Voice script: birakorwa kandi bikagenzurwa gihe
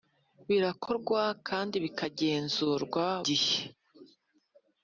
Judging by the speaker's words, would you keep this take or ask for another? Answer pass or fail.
pass